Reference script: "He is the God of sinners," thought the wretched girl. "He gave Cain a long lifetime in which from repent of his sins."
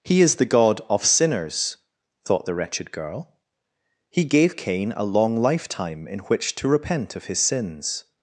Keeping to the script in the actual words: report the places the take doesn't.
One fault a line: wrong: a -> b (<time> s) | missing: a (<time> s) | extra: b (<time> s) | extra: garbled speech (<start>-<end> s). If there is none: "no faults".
wrong: from -> to (6.5 s)